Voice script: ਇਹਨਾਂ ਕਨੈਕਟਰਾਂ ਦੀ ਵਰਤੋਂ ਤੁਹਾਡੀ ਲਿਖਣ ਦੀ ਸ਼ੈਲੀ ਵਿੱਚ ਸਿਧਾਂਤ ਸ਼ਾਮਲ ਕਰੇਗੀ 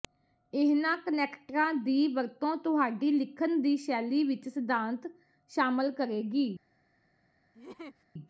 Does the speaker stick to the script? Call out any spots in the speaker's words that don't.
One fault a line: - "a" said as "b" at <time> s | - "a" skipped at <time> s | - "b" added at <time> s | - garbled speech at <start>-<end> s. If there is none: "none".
none